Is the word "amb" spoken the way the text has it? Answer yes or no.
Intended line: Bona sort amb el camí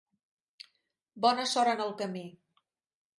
no